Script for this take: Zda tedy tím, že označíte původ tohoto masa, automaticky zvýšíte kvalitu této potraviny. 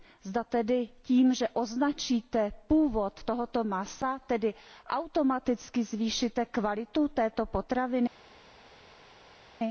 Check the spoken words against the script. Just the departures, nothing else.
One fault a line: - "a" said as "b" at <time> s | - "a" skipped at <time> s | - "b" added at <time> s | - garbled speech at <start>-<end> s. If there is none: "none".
none